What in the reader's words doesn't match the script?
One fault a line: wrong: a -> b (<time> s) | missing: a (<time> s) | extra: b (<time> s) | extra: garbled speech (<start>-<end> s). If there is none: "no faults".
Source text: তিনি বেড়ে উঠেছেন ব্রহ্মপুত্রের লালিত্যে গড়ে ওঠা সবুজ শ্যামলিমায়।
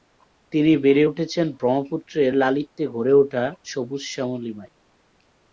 no faults